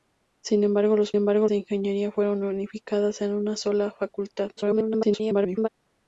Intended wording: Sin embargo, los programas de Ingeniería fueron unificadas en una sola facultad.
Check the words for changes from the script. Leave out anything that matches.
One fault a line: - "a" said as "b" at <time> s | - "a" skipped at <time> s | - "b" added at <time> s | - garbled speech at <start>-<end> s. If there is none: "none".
- "programas" said as "embargo" at 1.1 s
- garbled speech at 4.6-5.7 s